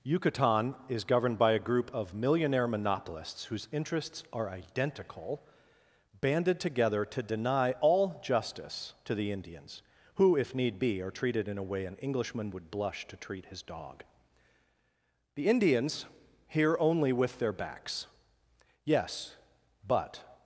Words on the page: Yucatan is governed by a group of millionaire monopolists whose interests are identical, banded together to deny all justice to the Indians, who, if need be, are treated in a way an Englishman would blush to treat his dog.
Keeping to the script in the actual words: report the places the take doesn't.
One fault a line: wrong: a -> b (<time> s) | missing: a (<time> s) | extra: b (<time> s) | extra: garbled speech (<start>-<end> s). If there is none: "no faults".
extra: The Indians hear only with their backs Yes but (15.3 s)